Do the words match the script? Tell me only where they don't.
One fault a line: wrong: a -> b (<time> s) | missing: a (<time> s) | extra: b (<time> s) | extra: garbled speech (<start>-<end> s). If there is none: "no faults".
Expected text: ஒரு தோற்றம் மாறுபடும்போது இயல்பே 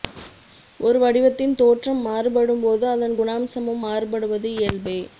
extra: வடிவத்தின் (1.0 s)
extra: அதன் குணாம்சமும் மாறுபடுவது (2.9 s)